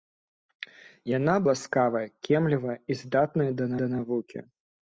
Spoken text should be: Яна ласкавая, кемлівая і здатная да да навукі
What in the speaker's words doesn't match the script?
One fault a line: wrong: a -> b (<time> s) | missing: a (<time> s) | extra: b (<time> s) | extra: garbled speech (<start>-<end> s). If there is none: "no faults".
no faults